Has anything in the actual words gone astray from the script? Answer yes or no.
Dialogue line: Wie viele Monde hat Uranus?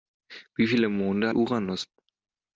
yes